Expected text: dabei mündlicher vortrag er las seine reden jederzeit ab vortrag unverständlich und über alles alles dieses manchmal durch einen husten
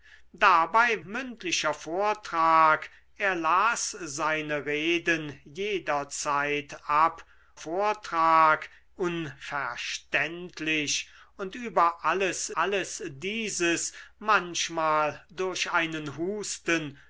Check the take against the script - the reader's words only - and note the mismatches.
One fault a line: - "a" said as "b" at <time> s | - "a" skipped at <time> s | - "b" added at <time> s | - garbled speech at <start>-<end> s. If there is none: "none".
none